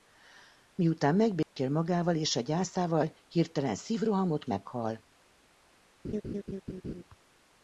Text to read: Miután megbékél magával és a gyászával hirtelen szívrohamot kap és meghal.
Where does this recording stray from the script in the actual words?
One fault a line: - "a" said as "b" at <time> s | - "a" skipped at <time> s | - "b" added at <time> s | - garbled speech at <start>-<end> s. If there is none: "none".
- "kap és" skipped at 4.5 s